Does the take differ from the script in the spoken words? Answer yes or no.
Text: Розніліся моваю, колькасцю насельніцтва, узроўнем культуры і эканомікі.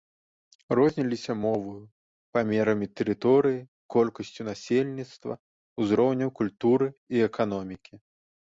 yes